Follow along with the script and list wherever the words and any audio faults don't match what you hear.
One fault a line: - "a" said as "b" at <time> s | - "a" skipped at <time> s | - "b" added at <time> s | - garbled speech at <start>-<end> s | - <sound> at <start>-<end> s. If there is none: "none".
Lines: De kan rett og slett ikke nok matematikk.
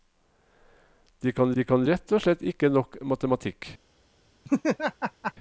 - "de kan" added at 1.5 s
- laugh at 4.4-5.3 s